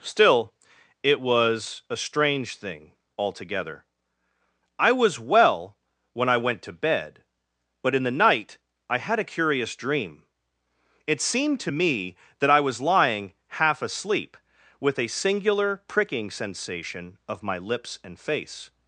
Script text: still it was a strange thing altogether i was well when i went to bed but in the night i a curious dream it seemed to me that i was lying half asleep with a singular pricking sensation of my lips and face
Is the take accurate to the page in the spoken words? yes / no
no